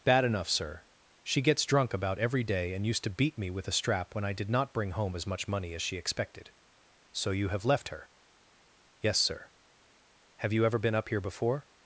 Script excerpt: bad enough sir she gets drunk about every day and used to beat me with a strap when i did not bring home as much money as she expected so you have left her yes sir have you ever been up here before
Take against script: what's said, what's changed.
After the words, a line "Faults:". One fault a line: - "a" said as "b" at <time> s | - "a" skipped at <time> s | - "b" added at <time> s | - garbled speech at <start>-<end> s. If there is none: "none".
bad enough sir she gets drunk about every day and used to beat me with a strap when i did not bring home as much money as she expected so you have left her yes sir have you ever been up here before
Faults:
none